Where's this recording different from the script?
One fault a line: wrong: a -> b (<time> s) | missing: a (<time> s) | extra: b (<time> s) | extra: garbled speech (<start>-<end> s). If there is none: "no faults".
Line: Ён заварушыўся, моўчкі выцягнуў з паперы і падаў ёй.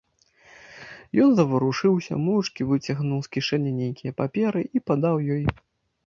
extra: кішэні нейкія (3.4 s)